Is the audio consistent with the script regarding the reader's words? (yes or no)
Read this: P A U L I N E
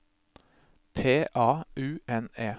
no